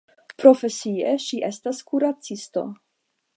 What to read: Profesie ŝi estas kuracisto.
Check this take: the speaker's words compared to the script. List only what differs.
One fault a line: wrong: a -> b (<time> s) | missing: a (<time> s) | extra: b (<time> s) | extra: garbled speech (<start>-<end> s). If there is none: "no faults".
no faults